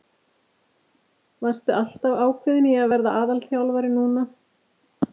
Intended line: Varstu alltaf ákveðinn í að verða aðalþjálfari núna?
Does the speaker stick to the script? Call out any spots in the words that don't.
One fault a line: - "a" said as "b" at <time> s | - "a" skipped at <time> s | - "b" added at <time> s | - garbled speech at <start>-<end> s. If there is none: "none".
none